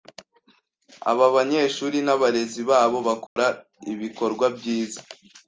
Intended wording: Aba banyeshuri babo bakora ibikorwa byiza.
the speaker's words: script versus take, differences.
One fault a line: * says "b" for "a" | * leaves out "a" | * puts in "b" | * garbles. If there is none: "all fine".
* puts in "n'abarezi"